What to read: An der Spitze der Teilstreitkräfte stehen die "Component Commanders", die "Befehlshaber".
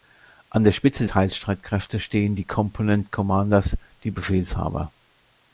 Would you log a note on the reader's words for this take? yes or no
yes